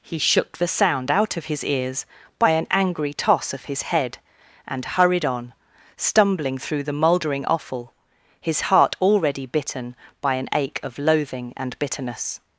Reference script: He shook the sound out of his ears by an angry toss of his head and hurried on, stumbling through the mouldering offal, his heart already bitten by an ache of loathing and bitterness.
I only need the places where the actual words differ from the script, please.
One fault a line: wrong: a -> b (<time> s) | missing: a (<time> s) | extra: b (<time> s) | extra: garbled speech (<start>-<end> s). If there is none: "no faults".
no faults